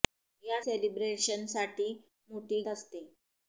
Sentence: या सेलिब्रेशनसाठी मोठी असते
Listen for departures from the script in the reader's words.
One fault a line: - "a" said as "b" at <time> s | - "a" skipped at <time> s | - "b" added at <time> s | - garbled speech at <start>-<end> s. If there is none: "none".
none